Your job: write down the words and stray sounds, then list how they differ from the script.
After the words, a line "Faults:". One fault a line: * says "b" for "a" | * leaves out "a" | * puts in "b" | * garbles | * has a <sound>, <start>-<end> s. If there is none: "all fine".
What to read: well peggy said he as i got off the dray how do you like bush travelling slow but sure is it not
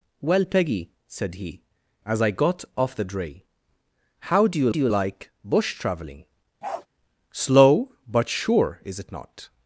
well peggy said he as i got off the dray how do you do you like bush travelling slow but sure is it not
Faults:
* puts in "do you"
* has a bark, 6.6-6.9 s